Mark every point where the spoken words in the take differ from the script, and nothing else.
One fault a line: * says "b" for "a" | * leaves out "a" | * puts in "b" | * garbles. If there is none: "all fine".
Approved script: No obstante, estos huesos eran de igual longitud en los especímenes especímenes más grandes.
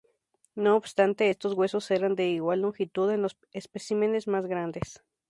* leaves out "especímenes"